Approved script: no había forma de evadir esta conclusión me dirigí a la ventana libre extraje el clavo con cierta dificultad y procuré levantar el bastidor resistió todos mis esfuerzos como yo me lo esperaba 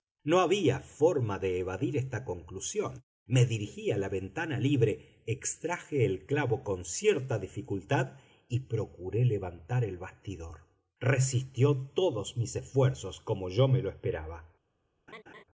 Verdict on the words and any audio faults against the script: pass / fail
fail